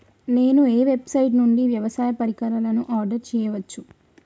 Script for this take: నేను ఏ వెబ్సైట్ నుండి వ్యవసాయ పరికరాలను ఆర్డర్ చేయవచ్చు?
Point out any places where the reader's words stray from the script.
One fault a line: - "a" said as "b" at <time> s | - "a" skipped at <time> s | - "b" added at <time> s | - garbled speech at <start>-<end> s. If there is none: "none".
none